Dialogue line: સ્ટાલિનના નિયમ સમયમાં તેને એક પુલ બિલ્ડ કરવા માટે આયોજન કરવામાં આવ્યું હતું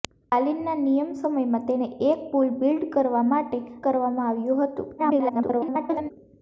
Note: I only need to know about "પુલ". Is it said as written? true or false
true